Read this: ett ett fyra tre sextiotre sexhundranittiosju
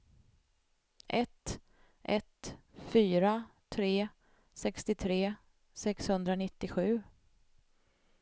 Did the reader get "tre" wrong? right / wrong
right